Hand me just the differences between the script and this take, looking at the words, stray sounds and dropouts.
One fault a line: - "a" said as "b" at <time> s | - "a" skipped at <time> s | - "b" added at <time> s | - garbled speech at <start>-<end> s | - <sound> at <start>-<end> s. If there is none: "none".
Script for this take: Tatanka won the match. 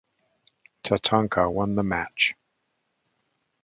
none